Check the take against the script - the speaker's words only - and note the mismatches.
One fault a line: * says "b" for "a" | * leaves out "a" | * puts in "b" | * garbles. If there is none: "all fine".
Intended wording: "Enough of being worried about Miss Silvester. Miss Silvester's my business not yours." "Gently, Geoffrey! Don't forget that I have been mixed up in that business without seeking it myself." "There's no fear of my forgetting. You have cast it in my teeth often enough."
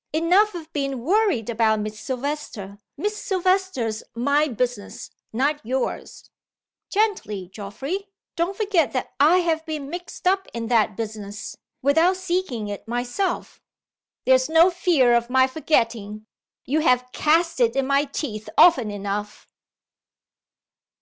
all fine